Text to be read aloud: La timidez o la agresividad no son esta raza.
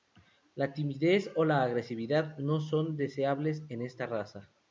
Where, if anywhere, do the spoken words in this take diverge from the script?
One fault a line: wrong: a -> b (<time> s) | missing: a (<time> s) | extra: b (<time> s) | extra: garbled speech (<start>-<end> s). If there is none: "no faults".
extra: deseables en (3.0 s)